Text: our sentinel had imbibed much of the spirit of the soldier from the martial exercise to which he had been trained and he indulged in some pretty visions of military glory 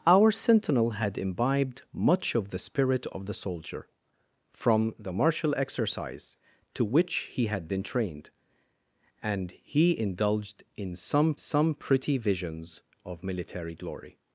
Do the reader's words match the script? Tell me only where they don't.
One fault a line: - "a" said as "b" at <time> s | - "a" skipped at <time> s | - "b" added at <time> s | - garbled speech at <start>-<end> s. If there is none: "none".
- "some" added at 11.4 s